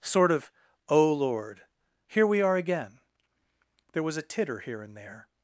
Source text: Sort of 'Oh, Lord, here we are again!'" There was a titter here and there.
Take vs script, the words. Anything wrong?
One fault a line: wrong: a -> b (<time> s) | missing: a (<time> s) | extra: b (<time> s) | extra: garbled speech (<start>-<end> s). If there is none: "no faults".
no faults